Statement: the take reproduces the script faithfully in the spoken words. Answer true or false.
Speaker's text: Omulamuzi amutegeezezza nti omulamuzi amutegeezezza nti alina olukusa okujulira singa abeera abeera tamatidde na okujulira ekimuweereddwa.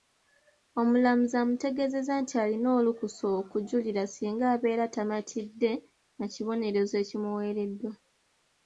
false